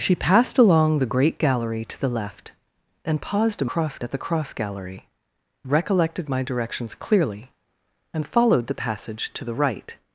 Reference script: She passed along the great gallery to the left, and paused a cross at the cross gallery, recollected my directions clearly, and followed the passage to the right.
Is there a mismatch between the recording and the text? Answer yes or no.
no